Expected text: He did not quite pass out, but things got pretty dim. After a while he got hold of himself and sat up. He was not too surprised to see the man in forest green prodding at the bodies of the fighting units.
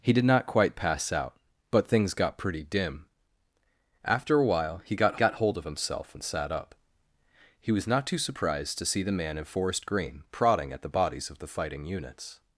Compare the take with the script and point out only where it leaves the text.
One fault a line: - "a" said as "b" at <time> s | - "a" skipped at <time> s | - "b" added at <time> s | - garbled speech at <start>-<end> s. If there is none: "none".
- "got" added at 5.2 s